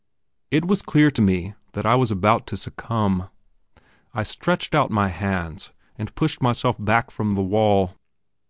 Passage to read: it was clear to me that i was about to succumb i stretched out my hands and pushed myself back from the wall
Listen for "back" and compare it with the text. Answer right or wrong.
right